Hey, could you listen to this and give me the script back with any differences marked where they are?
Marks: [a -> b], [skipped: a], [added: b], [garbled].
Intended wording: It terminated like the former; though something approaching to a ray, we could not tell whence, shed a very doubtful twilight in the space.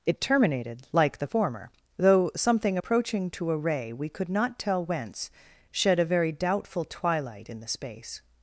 It terminated like the former; though something approaching to a ray, we could not tell whence, shed a very doubtful twilight in the space.